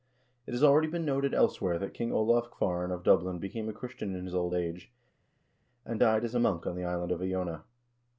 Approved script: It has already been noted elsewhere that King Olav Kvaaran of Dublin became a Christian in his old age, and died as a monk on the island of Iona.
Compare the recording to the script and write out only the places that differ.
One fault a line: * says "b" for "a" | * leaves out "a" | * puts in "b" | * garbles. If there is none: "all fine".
all fine